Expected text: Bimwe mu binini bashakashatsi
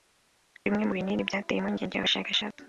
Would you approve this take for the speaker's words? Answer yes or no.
no